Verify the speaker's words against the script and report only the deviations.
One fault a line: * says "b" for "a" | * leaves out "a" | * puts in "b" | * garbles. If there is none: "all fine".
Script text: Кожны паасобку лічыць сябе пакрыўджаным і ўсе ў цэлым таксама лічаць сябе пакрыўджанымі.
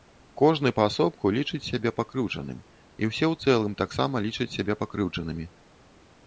all fine